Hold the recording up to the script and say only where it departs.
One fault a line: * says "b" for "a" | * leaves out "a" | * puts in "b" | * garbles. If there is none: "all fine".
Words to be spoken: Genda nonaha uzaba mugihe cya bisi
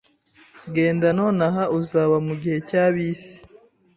all fine